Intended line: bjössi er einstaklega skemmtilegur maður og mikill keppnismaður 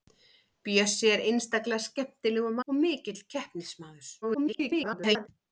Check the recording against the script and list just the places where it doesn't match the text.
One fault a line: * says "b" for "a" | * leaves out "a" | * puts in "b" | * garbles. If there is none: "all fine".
* leaves out "maður"
* garbles